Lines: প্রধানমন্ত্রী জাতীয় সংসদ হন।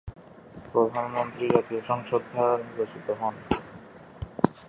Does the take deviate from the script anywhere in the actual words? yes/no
yes